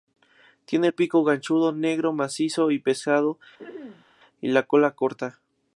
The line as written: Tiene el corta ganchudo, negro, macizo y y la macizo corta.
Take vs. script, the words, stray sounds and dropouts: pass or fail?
fail